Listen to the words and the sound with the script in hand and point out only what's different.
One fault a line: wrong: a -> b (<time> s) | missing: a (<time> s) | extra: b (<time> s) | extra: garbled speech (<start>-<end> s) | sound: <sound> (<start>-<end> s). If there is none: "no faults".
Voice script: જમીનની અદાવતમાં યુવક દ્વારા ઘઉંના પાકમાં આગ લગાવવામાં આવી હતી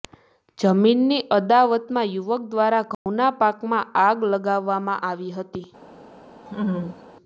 sound: dropout (2.9-3.1 s)
sound: laugh (6.5-7.0 s)